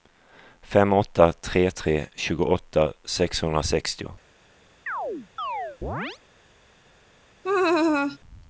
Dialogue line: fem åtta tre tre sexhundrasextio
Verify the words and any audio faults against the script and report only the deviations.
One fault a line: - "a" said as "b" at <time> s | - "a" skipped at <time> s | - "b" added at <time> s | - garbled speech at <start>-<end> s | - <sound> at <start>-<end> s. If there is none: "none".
- "tjugoåtta" added at 2.1 s
- chirp at 4.9-6.2 s
- laugh at 7.4-8.2 s